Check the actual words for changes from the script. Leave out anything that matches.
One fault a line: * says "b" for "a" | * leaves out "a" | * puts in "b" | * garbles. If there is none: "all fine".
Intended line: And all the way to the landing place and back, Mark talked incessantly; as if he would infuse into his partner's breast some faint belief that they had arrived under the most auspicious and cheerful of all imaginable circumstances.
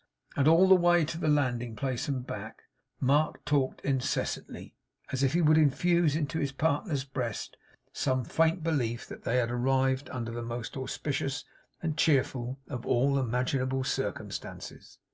all fine